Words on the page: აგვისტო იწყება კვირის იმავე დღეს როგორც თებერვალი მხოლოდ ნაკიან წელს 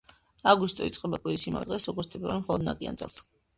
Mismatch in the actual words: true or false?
false